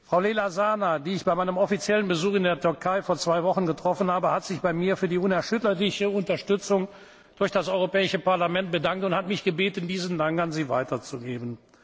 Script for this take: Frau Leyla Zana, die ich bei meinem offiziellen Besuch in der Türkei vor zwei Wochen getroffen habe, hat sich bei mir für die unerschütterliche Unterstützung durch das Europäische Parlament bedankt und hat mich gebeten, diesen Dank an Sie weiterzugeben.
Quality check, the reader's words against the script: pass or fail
pass